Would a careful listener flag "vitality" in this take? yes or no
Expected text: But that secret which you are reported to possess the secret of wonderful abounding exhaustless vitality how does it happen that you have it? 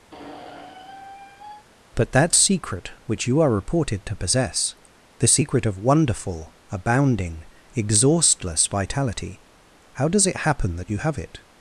no